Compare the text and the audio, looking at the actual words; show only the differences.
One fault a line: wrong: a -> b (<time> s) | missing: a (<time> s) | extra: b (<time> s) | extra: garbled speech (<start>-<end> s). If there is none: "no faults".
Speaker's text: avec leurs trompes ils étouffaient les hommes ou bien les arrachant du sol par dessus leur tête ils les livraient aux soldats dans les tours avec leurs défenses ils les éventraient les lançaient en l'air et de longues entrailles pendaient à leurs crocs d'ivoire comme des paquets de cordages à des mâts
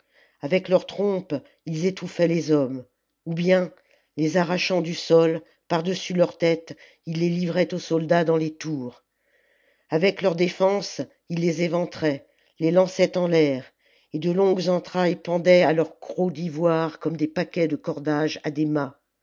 no faults